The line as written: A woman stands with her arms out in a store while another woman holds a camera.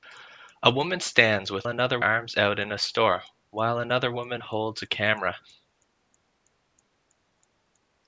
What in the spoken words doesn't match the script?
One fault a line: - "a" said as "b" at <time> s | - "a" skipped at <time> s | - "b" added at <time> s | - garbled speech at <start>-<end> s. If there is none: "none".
- "her" said as "another" at 1.7 s